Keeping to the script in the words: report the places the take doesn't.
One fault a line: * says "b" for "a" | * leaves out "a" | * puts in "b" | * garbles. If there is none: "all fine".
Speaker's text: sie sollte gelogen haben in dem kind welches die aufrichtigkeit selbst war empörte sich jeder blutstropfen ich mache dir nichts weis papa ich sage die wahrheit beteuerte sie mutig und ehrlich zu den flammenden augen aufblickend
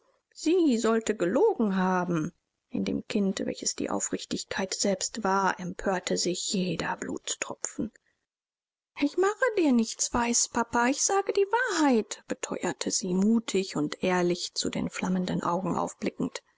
all fine